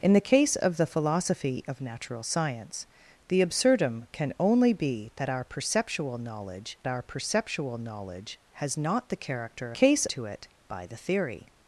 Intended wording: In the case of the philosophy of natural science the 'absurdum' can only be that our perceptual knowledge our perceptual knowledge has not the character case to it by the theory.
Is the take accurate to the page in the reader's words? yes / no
yes